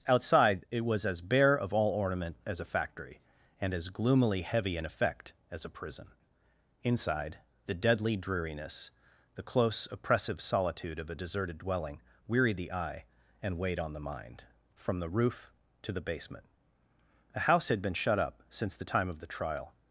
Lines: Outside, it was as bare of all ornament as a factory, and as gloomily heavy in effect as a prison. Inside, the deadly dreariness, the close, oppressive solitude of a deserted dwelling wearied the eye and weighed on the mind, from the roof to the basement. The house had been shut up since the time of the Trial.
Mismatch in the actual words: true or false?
true